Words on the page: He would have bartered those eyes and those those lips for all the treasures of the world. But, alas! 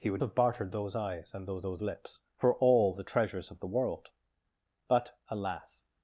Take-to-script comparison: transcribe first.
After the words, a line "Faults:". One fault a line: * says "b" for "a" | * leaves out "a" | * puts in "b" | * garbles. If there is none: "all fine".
He would have bartered those eyes and those those lips for all the treasures of the world. But, alas!
Faults:
all fine